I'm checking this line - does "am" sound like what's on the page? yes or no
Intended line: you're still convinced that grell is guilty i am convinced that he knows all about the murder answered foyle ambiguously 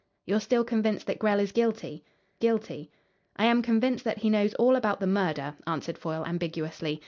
yes